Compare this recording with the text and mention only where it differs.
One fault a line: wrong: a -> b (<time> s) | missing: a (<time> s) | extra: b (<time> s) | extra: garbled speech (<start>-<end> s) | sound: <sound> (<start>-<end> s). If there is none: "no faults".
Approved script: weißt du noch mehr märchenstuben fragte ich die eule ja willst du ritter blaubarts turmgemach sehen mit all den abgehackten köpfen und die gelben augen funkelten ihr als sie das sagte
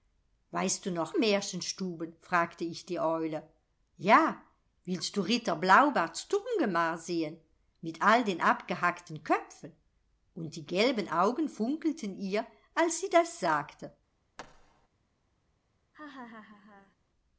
missing: mehr (1.1 s)
sound: thud (14.4-14.9 s)
sound: laugh (15.9-17.0 s)